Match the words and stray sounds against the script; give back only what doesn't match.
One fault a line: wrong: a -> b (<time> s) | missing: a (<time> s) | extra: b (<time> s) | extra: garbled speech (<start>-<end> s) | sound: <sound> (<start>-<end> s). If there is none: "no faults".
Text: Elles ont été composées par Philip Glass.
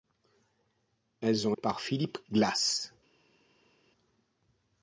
missing: été composées (1.6 s)